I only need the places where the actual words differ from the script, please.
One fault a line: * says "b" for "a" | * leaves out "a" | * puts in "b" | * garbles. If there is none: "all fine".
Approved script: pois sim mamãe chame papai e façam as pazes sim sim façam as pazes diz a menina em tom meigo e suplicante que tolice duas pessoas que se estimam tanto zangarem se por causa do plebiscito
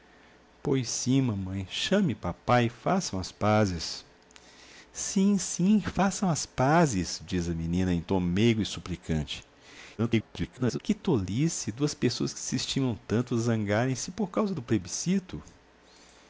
* garbles